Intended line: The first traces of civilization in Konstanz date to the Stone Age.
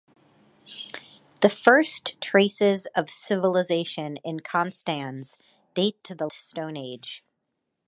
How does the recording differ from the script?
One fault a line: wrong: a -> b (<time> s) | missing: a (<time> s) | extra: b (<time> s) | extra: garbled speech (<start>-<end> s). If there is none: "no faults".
no faults